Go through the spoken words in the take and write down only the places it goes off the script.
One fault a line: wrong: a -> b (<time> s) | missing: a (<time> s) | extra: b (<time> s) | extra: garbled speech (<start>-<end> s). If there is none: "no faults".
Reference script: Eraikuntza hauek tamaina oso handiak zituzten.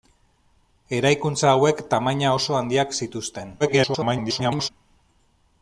extra: garbled speech (3.6-4.7 s)